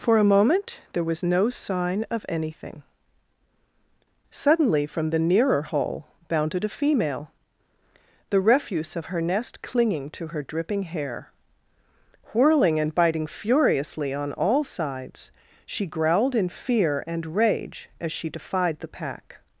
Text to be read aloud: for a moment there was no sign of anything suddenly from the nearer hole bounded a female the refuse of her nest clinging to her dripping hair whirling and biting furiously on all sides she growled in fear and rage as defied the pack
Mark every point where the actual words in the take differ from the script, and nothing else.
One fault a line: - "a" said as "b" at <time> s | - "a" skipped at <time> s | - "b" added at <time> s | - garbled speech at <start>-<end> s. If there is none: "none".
- "she" added at 18.1 s